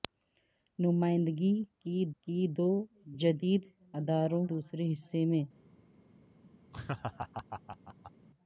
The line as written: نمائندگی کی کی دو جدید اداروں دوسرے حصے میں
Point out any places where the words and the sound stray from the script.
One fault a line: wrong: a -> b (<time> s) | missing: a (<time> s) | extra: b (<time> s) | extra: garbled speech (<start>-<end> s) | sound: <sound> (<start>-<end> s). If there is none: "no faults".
sound: laugh (6.7-8.1 s)